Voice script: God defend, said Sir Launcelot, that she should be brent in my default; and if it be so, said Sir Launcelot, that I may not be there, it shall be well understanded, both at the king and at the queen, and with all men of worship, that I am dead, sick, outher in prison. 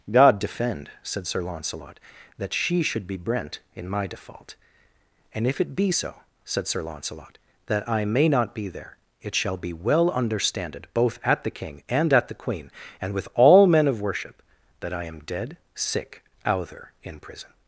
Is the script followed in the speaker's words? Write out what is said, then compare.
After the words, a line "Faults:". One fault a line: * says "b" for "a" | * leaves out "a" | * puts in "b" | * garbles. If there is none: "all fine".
God defend, said Sir Launcelot, that she should be brent in my default; and if it be so, said Sir Launcelot, that I may not be there, it shall be well understanded, both at the king and at the queen, and with all men of worship, that I am dead, sick, outher in prison.
Faults:
all fine